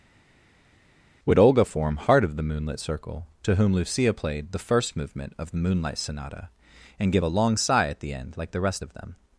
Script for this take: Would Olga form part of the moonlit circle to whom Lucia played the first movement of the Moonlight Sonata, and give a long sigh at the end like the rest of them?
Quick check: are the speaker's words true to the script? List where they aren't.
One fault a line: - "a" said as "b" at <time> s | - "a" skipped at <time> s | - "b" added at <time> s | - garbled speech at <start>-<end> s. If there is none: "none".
- "part" said as "heart" at 2.0 s